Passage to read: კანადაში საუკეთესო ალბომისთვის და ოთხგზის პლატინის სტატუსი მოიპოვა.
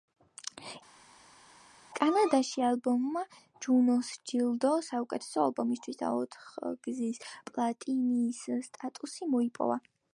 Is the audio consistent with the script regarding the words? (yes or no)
no